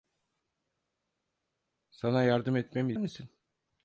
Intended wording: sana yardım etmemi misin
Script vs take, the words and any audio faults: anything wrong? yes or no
no